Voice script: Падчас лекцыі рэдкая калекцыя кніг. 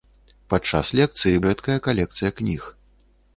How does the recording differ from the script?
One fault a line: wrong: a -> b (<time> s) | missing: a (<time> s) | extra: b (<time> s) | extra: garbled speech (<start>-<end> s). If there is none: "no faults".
no faults